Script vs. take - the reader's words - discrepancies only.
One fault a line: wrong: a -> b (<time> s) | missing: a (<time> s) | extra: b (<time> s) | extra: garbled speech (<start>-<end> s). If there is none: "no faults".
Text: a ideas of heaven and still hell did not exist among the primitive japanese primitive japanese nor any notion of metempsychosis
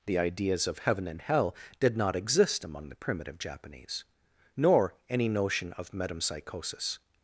wrong: a -> the (0.1 s)
missing: still (1.2 s)
missing: primitive japanese (4.0 s)